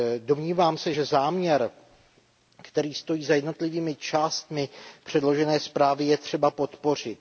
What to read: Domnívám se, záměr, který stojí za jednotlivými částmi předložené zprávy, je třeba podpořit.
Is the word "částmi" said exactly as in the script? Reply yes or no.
yes